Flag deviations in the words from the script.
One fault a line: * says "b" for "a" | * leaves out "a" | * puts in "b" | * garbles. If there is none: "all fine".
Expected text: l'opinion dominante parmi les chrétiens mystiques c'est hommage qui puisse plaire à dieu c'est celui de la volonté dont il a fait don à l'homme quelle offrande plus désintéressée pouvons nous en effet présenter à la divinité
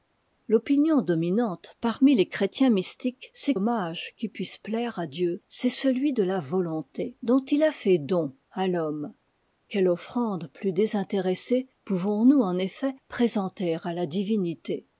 all fine